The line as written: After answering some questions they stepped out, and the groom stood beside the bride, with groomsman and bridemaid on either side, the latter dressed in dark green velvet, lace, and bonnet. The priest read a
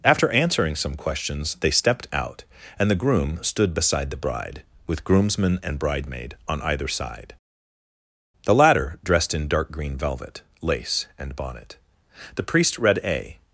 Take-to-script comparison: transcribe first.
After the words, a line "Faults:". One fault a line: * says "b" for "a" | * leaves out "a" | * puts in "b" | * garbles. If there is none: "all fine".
After answering some questions they stepped out, and the groom stood beside the bride, with groomsman and bridemaid on either side, the latter dressed in dark green velvet, lace, and bonnet. The priest read a
Faults:
all fine